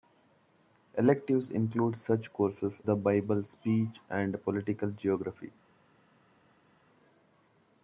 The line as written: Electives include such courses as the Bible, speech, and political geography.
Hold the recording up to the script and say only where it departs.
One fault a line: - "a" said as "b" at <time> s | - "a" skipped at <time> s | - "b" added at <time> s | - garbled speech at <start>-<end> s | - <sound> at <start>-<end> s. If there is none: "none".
- "as" skipped at 2.8 s